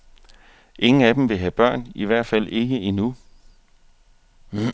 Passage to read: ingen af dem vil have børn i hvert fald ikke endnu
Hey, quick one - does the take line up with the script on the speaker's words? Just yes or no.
yes